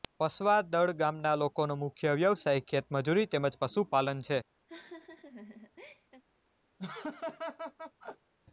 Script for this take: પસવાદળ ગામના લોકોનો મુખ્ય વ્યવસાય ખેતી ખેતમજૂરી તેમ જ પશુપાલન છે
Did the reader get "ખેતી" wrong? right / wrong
wrong